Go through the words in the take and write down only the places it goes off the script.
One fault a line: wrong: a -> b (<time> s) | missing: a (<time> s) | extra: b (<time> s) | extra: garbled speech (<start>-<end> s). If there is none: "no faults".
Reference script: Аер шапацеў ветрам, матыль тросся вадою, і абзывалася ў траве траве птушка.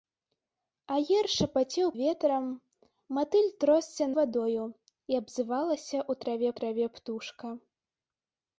no faults